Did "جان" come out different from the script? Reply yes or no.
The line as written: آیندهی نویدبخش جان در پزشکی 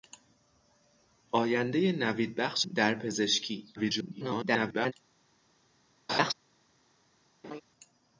yes